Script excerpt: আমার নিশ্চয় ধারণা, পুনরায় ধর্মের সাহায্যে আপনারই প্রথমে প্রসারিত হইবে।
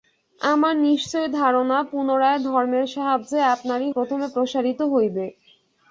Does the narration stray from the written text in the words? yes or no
no